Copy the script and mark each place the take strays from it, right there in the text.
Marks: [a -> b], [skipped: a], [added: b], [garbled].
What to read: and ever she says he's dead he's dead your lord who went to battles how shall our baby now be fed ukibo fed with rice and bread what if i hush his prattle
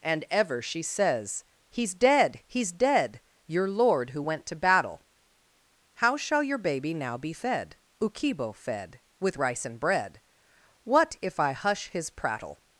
and ever she says he's dead he's dead your lord who went to [battles -> battle] how shall [our -> your] baby now be fed ukibo fed with rice and bread what if i hush his prattle